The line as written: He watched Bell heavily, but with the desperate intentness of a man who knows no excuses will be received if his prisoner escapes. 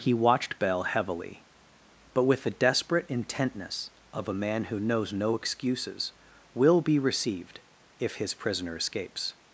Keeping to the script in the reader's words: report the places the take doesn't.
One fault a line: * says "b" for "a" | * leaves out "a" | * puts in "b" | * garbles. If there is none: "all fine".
all fine